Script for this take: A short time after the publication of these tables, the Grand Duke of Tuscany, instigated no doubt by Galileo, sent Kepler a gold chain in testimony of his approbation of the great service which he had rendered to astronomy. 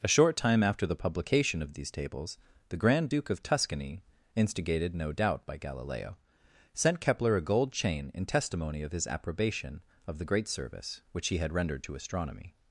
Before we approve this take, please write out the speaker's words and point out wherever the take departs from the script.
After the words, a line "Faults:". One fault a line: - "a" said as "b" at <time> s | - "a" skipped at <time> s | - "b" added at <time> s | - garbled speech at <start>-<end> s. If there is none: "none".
A short time after the publication of these tables, the Grand Duke of Tuscany, instigated no doubt by Galileo, sent Kepler a gold chain in testimony of his approbation of the great service which he had rendered to astronomy.
Faults:
none